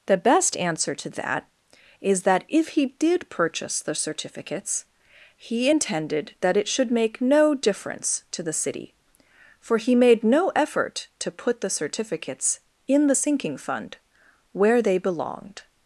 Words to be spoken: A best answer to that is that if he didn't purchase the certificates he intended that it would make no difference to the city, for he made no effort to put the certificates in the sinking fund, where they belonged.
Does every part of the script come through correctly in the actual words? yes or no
no